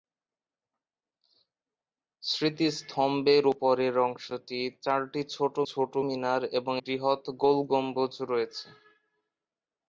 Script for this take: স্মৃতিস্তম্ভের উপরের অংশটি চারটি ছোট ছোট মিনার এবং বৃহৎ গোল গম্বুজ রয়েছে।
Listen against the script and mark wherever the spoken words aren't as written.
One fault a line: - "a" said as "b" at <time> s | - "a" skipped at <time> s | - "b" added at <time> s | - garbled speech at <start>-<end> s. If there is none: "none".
none